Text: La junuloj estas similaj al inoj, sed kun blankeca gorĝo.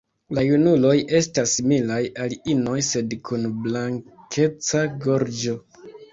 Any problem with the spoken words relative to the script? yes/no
no